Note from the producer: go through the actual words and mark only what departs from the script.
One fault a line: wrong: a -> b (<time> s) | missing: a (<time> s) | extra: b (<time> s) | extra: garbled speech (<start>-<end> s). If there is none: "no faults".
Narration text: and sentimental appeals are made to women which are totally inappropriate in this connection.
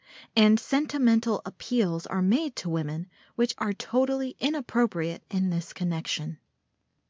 no faults